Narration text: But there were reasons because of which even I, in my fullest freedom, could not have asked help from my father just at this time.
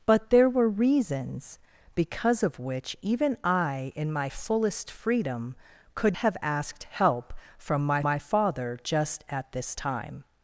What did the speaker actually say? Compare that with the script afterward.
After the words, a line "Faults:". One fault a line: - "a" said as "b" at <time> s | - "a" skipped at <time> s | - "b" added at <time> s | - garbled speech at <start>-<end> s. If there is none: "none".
But there were reasons because of which even I, in my fullest freedom, could have asked help from my my father just at this time.
Faults:
- "not" skipped at 6.2 s
- "my" added at 8.0 s